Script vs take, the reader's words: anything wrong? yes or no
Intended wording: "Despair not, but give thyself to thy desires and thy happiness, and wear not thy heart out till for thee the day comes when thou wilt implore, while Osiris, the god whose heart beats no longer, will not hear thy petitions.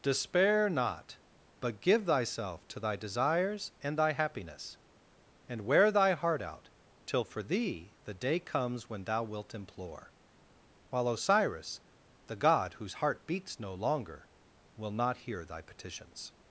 yes